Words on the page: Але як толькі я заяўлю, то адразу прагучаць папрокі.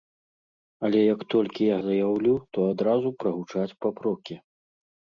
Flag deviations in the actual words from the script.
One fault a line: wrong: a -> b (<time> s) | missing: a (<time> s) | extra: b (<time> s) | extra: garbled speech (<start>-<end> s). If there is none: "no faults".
no faults